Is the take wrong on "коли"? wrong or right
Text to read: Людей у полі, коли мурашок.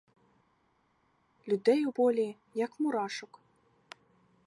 wrong